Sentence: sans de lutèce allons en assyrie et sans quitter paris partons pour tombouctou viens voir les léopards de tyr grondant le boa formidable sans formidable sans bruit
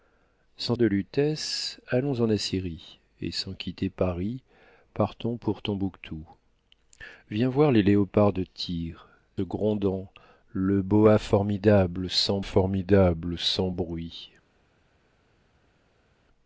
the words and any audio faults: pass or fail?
pass